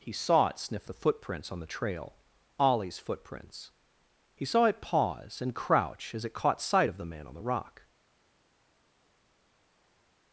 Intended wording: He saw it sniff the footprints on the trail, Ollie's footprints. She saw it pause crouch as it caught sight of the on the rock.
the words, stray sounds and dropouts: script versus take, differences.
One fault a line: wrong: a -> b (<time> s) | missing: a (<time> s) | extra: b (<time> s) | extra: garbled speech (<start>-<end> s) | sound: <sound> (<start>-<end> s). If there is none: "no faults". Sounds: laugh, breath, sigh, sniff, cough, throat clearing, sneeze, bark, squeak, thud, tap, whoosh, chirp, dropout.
wrong: She -> He (4.3 s)
extra: and (5.4 s)
extra: man (7.0 s)